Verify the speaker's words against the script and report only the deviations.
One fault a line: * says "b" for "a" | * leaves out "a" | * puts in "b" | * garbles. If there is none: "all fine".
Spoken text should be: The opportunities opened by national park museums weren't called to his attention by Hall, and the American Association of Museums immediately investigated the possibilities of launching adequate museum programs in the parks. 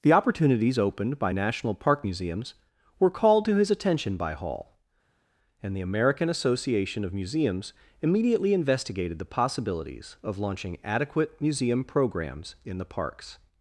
* says "were" for "weren't"